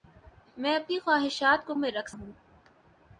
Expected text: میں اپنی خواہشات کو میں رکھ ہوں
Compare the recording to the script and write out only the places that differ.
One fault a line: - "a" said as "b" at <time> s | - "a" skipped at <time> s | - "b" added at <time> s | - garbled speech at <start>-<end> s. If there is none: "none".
none